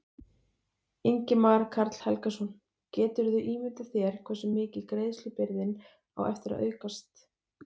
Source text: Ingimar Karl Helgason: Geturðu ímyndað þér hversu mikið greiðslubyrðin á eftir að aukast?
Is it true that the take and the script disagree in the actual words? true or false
false